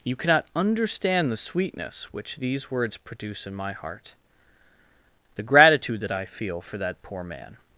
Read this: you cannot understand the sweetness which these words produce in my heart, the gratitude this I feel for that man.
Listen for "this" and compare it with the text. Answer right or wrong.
wrong